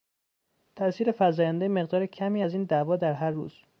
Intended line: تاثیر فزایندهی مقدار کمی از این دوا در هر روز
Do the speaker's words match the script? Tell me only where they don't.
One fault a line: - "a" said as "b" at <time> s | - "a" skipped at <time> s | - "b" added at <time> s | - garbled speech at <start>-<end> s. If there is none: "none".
none